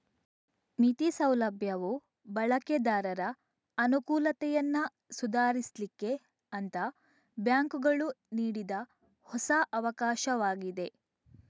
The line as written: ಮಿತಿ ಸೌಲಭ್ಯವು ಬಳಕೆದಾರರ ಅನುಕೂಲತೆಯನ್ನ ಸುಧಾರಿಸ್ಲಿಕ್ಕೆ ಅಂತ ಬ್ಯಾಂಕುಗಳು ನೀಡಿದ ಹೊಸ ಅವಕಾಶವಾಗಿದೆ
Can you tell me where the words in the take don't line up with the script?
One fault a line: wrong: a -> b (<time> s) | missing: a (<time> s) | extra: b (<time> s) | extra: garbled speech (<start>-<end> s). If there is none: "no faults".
no faults